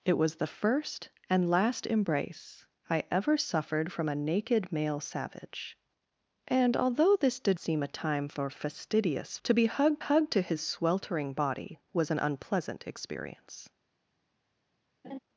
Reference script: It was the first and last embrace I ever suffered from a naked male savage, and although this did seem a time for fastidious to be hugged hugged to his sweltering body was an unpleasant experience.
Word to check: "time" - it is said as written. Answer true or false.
true